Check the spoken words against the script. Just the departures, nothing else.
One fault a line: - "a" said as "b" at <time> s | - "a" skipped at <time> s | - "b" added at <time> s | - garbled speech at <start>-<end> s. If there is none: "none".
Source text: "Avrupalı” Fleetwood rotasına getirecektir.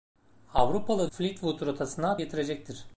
none